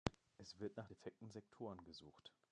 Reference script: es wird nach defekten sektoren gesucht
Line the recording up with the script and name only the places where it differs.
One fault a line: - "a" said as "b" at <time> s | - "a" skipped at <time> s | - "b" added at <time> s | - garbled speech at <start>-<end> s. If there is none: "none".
none